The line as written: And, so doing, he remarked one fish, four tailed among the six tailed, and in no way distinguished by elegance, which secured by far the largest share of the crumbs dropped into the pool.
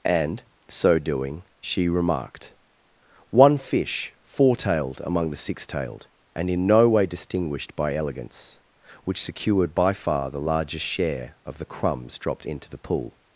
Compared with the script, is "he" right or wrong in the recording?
wrong